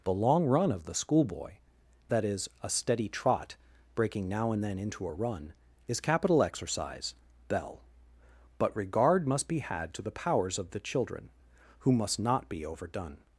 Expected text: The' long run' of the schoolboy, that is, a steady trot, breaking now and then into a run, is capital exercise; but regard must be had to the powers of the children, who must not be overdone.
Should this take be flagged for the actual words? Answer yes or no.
yes